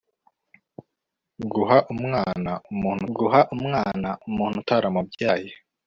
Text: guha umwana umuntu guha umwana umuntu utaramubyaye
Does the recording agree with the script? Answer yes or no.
yes